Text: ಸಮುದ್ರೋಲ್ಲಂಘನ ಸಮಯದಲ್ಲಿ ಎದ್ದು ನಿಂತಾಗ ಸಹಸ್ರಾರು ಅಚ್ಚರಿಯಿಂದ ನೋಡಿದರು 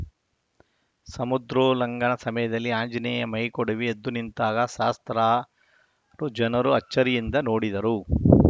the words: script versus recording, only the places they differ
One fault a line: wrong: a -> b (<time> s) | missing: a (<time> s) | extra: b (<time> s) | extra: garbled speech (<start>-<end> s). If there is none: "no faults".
extra: ಆಂಜನೇಯ ಮೈಕೊಡವಿ (2.8 s)
extra: ಜನರು (6.4 s)